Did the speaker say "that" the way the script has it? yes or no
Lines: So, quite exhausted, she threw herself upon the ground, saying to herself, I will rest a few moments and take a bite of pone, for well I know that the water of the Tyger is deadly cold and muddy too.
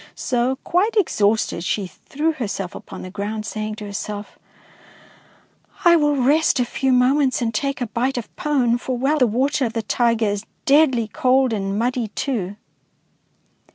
no